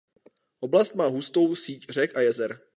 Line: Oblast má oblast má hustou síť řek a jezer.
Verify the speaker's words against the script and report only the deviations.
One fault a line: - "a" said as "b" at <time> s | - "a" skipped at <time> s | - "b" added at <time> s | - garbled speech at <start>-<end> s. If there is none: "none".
- "oblast má" skipped at 1.1 s